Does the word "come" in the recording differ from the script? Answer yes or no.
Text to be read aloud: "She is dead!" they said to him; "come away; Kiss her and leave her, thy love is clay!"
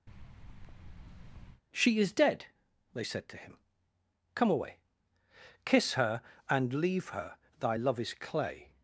no